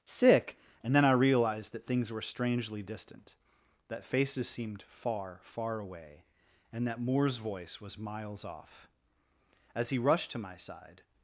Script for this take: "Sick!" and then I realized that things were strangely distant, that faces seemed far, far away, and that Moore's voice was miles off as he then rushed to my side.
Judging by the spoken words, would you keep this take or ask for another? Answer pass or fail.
fail